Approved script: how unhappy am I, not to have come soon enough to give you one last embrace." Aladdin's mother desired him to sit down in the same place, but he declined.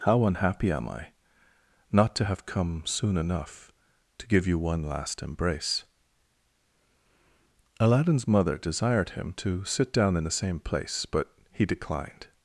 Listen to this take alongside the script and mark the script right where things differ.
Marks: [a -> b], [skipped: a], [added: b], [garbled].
how unhappy am I, not to have come soon enough to give you one last embrace." Aladdin's mother desired him to sit down in the same place, but he declined.